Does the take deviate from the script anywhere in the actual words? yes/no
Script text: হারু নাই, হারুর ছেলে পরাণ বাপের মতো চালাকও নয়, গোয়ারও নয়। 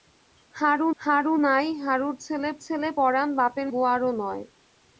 yes